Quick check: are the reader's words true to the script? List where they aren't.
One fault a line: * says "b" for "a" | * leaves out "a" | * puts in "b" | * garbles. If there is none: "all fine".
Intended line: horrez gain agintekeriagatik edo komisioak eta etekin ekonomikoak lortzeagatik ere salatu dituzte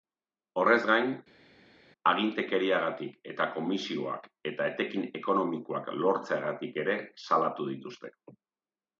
* says "eta" for "edo"